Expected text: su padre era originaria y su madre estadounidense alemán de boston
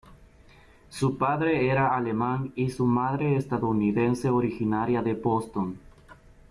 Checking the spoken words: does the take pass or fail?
fail